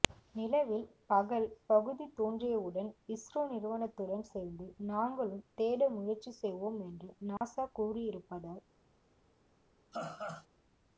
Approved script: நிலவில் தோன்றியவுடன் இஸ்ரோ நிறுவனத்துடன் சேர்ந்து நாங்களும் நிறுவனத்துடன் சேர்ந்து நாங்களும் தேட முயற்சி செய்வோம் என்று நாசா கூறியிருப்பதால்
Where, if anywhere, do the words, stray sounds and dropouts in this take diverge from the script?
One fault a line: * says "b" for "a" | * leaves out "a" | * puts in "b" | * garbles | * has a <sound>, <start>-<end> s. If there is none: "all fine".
* puts in "பகல் பகுதி"
* leaves out "நிறுவனத்துடன் சேர்ந்து நாங்களும்"
* has a dropout, 7.4-7.4 s
* has a laugh, 9.9-10.5 s